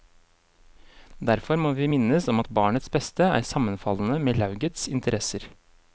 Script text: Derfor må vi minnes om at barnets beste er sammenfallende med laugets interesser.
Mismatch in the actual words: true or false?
false